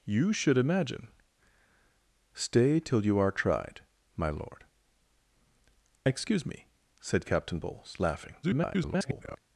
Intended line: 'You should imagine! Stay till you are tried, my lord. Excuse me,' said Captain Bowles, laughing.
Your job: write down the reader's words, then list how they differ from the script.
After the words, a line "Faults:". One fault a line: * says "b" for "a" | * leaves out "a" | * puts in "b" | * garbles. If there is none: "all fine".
'You should imagine! Stay till you are tried, my lord. Excuse me,' said Captain Bowles, laughing. [garbled]
Faults:
* garbles